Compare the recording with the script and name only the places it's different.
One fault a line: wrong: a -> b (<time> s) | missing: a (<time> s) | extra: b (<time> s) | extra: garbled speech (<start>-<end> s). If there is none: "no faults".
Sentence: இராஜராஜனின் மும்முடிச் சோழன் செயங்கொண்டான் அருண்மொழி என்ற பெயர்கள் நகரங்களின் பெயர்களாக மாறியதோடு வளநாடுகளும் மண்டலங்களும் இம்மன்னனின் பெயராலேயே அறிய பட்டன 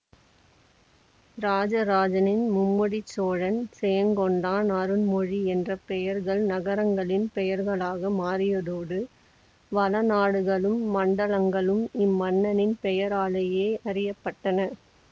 no faults